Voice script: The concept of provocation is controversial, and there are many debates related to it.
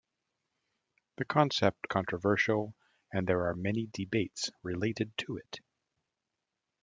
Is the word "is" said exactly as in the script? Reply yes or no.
no